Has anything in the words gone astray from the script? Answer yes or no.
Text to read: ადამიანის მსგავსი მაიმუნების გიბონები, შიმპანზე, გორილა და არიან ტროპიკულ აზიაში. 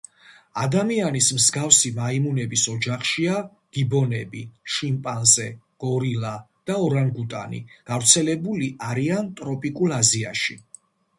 yes